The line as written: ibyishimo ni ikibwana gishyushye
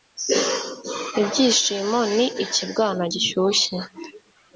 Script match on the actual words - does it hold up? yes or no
yes